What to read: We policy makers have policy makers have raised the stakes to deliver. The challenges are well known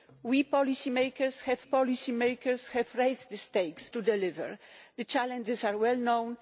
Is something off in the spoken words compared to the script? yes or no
no